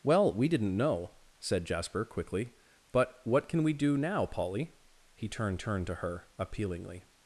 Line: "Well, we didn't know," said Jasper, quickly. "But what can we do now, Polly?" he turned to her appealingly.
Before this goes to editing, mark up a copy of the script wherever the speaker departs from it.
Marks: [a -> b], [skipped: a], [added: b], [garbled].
"Well, we didn't know," said Jasper, quickly. "But what can we do now, Polly?" he turned [added: turned] to her appealingly.